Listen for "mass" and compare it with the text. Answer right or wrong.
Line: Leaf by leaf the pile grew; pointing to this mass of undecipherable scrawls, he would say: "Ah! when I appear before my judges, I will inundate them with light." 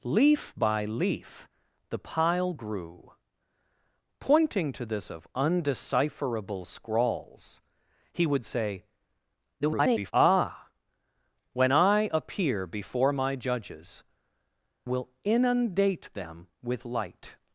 wrong